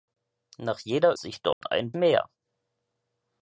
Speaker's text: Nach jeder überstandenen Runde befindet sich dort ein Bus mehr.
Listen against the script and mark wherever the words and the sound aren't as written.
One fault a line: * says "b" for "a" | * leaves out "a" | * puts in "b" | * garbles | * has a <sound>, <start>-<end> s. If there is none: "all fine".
* leaves out "überstandenen Runde befindet"
* has a dropout, 1.5-1.6 s
* leaves out "Bus"